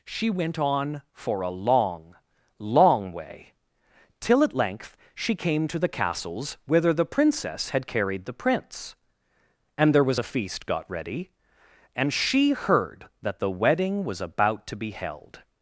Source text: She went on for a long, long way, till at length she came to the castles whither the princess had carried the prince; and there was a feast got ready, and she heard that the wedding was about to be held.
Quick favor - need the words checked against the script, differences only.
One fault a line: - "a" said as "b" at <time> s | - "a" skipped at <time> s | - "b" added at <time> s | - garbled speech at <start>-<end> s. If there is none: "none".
none